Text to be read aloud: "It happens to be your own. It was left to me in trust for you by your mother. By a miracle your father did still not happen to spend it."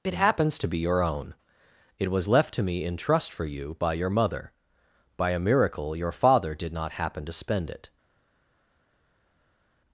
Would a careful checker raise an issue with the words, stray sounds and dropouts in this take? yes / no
yes